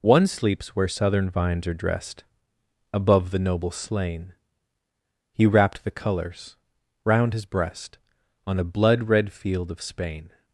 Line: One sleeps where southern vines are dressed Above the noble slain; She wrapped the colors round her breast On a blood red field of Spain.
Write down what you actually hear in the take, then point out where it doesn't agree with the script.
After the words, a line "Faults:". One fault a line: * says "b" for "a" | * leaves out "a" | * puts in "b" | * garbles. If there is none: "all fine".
One sleeps where southern vines are dressed Above the noble slain; He wrapped the colors round his breast On a blood red field of Spain.
Faults:
* says "He" for "She"
* says "his" for "her"